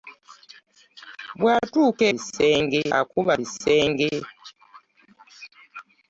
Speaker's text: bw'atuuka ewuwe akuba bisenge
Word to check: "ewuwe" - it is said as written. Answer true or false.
false